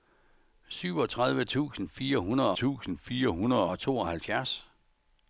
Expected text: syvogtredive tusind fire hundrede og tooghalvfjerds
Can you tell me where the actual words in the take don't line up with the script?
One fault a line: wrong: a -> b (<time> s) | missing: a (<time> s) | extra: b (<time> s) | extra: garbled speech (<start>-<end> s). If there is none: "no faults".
extra: tusind fire hundrede (2.5 s)